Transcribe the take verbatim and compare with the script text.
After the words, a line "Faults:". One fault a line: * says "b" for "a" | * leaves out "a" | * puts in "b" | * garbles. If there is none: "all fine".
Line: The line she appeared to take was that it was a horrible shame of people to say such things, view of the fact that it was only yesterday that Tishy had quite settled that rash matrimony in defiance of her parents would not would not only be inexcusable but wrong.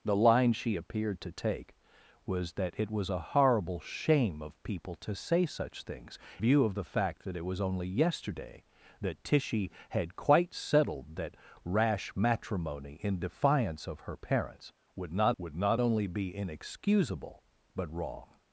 The line she appeared to take was that it was a horrible shame of people to say such things, view of the fact that it was only yesterday that Tishy had quite settled that rash matrimony in defiance of her parents would not would not only be inexcusable but wrong.
Faults:
all fine